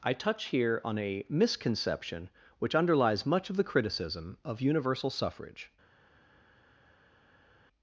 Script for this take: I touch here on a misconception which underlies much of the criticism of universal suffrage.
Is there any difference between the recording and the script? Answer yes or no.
no